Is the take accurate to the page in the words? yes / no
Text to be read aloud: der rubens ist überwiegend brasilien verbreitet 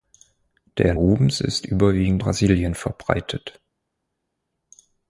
yes